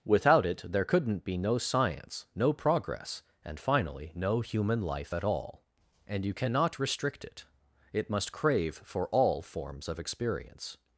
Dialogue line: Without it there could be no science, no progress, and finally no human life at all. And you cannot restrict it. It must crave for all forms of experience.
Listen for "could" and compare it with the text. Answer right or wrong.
wrong